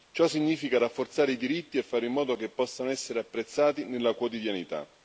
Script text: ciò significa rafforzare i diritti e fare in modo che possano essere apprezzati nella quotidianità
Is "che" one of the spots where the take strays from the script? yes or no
no